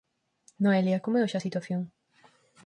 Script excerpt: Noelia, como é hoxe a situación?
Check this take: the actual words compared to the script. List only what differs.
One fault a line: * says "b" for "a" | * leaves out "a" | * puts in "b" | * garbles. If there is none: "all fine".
all fine